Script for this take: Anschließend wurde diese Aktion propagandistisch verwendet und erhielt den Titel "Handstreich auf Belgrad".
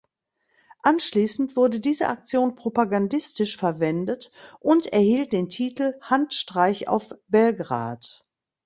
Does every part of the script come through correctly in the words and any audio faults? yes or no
yes